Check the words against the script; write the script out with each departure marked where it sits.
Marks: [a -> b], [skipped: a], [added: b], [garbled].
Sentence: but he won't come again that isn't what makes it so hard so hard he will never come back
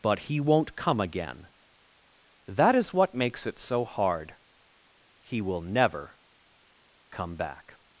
but he won't come again that [isn't -> is] what makes it so hard [skipped: so hard] he will never come back